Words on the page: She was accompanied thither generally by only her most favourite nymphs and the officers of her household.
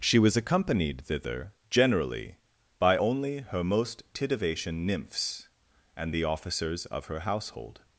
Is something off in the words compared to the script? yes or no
yes